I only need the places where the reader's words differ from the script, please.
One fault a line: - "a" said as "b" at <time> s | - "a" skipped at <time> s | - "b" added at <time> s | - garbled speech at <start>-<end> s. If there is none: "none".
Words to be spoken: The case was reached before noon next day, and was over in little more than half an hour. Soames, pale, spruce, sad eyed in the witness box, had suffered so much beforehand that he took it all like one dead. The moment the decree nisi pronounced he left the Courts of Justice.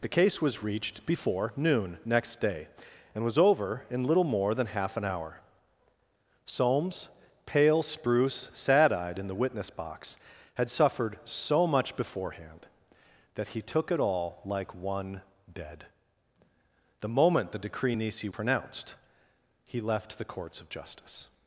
none